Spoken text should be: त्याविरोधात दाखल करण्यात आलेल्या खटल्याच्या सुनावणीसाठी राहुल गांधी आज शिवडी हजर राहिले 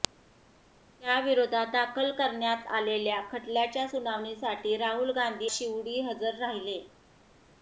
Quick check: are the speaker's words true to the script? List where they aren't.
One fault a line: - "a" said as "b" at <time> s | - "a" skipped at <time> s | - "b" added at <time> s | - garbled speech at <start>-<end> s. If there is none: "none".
- "आज" skipped at 5.5 s